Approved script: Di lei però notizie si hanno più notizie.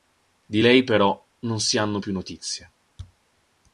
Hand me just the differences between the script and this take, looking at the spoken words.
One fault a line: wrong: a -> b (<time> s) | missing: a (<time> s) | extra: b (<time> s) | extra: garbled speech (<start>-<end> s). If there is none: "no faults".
wrong: notizie -> non (1.4 s)